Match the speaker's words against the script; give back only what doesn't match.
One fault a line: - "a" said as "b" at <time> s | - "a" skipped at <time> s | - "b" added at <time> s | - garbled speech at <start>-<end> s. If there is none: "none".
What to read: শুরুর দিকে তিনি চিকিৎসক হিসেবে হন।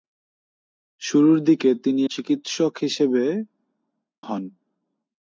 none